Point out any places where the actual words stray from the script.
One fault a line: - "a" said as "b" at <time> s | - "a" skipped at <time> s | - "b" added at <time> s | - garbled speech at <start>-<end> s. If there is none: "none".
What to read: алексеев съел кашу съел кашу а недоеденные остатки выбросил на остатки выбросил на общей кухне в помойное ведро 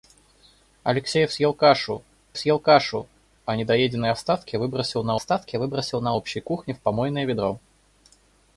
none